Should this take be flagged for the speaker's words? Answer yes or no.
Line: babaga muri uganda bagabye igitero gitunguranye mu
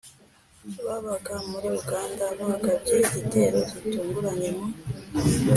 no